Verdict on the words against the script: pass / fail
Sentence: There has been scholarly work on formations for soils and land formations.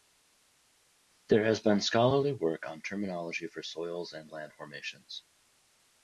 fail